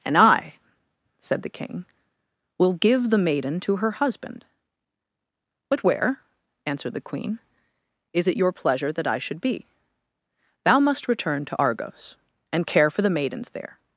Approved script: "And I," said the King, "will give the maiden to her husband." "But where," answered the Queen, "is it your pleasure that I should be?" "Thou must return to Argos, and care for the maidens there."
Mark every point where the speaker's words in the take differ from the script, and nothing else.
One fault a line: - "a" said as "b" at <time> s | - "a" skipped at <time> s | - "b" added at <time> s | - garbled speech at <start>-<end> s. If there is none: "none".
none